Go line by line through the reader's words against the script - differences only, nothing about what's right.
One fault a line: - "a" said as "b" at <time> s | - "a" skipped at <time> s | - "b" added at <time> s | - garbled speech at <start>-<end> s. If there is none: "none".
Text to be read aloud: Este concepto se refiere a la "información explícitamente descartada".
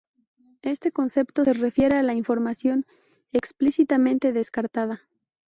none